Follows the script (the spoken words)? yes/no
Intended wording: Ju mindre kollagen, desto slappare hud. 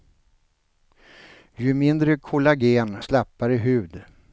no